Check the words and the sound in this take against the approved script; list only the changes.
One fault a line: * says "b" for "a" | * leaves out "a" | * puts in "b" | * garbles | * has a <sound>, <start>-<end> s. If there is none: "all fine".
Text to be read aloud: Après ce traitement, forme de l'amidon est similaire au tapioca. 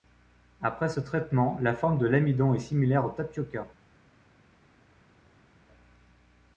* puts in "la"